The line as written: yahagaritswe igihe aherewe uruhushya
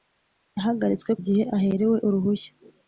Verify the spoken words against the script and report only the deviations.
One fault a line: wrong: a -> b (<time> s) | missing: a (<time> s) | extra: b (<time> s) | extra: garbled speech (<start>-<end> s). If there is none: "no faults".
no faults